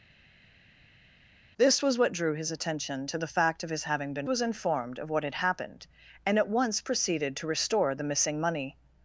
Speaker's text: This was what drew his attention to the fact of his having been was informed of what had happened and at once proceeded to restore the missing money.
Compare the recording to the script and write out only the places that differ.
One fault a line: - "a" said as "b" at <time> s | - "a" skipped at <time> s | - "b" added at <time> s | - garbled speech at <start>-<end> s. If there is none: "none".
none